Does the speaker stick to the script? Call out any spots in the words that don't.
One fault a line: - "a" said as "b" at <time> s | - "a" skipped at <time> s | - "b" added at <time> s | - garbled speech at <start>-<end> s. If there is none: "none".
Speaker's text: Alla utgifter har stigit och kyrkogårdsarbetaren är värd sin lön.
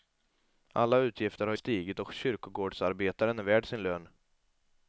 none